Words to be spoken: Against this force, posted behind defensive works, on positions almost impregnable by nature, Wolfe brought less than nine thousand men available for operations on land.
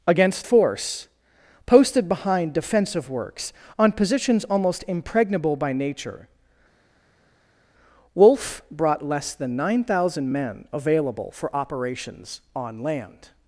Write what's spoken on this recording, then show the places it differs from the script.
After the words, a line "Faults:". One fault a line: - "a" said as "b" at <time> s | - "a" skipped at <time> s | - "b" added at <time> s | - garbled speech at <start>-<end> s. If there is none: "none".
Against force, posted behind defensive works, on positions almost impregnable by nature, Wolfe brought less than nine thousand men available for operations on land.
Faults:
- "this" skipped at 0.5 s